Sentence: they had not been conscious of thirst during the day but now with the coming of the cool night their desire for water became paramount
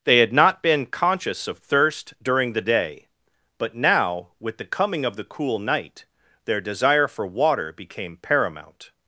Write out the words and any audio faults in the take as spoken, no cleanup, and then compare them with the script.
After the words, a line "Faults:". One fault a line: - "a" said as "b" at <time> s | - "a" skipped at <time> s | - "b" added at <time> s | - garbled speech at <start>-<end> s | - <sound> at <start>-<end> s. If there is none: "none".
they had not been conscious of thirst during the day but now with the coming of the cool night their desire for water became paramount
Faults:
none